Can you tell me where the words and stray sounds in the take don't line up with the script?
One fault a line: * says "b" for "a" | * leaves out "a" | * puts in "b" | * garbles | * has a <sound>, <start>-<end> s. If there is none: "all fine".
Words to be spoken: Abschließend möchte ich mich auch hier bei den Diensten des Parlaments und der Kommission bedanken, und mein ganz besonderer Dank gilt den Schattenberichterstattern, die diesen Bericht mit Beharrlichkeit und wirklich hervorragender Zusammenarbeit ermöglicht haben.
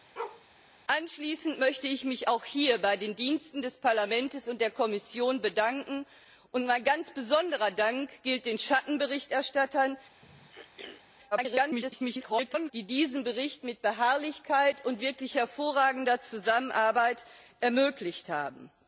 * has a bark, 0.2-0.5 s
* has a throat clearing, 10.2-11.0 s
* garbles